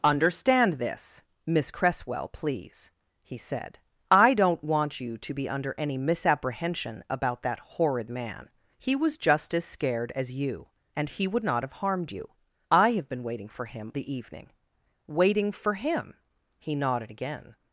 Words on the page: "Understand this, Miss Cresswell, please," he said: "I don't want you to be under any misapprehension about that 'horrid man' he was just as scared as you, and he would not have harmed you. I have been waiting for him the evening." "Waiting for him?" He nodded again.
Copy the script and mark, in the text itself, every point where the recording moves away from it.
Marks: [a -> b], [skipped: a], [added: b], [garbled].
"Understand this, Miss Cresswell, please," he said: "I don't want you to be under any misapprehension about that 'horrid man' he was just as scared as you, and he would not have harmed you. I have been waiting for him the evening." "Waiting for him?" He nodded again.